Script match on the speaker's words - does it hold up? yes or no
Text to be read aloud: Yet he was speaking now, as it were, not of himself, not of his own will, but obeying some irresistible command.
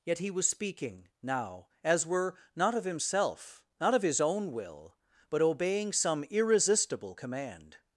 no